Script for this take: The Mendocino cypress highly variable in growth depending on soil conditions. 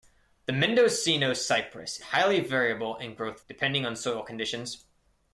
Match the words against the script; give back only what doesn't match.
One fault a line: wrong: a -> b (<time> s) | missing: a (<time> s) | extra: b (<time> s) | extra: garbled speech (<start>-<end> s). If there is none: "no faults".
no faults